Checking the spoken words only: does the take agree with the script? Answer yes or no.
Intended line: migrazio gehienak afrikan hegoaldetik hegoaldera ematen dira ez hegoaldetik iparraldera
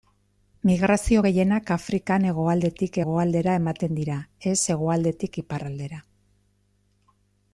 yes